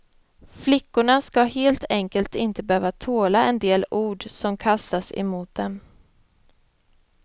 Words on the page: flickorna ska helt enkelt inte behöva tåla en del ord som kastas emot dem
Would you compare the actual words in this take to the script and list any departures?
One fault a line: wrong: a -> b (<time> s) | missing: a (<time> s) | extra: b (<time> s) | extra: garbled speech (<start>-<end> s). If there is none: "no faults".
no faults